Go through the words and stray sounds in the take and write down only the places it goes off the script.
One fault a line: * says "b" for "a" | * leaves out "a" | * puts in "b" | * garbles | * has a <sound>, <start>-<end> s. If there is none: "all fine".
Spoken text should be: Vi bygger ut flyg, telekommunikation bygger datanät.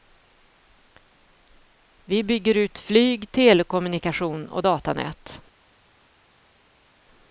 * says "och" for "bygger"